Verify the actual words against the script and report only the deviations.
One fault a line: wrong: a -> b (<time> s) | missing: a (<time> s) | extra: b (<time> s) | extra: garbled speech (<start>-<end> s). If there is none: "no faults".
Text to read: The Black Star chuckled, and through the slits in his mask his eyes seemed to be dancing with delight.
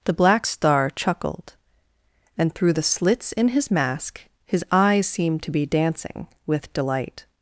no faults